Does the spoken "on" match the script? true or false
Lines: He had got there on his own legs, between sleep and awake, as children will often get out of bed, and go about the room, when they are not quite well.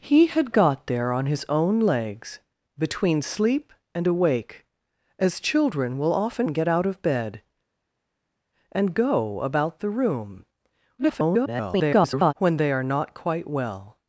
true